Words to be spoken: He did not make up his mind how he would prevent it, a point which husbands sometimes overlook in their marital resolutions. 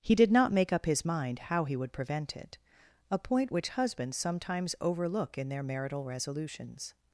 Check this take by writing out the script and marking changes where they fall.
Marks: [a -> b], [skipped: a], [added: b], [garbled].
He did not make up his mind how he would prevent it, a point which husbands sometimes overlook in their marital resolutions.